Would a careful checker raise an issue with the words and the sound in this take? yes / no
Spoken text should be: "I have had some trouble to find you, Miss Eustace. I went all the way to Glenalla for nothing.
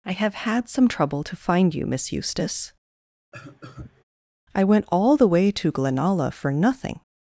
yes